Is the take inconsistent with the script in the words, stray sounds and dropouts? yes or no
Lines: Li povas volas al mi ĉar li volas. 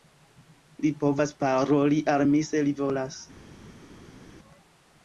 yes